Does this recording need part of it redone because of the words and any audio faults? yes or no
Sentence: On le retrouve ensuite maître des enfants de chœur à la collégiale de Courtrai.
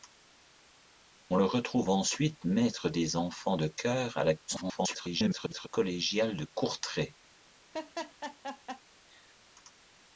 yes